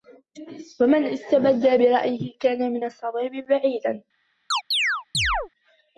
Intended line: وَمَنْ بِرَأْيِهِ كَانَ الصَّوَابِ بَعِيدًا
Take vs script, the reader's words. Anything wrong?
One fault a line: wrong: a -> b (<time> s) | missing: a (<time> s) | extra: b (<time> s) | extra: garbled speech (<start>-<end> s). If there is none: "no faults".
extra: اسْتَبَدَّ (1.1 s)
extra: مِنْ (2.7 s)